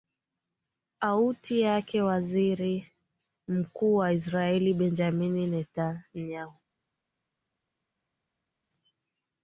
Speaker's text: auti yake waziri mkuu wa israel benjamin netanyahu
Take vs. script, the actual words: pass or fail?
pass